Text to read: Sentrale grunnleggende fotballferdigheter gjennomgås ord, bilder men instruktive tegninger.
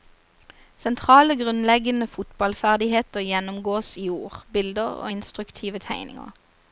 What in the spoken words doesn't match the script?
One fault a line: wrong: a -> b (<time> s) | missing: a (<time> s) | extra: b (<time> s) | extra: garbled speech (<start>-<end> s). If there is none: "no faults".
extra: i (4.0 s)
wrong: men -> og (4.8 s)